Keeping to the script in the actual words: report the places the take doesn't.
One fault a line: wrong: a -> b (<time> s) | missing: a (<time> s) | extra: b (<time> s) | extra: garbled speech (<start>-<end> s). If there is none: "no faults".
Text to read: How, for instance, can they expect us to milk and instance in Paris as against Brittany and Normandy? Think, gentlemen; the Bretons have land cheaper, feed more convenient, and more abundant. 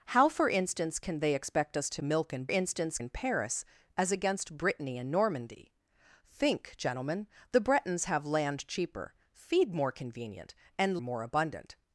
no faults